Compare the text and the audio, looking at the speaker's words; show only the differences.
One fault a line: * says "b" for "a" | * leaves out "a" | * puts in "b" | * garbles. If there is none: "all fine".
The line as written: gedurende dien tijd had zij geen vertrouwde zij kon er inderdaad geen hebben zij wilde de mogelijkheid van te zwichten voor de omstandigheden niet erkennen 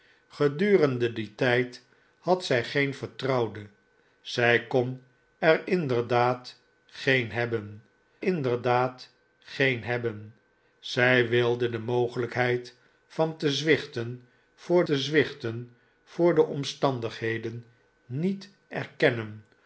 * puts in "inderdaad geen hebben"
* puts in "te zwichten voor"